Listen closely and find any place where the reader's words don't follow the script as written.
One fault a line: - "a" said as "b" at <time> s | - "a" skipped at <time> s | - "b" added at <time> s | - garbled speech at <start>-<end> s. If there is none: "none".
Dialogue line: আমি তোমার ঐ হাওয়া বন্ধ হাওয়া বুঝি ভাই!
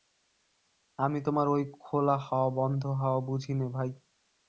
- "খোলা" added at 1.8 s
- "নে" added at 3.5 s